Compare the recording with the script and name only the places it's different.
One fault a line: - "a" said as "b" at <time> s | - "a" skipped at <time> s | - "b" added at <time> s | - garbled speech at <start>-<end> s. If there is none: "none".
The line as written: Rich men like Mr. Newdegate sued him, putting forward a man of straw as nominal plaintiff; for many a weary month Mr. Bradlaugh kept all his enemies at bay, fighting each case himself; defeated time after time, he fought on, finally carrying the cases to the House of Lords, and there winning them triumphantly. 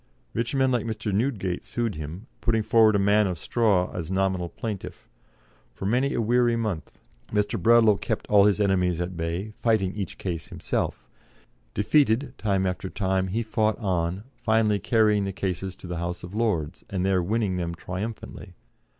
none